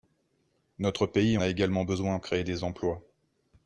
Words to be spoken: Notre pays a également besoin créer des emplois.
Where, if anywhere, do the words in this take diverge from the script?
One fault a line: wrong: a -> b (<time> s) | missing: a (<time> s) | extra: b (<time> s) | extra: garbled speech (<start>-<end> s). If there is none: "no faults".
no faults